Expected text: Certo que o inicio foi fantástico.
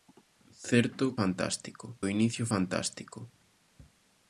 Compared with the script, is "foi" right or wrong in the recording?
wrong